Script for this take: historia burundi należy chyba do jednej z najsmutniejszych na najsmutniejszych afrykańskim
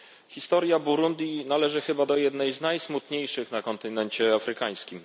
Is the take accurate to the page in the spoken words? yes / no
no